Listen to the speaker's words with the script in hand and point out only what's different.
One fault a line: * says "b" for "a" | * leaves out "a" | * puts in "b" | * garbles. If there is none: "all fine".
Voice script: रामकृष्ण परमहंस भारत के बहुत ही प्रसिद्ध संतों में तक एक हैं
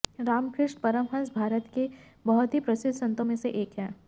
* says "से" for "तक"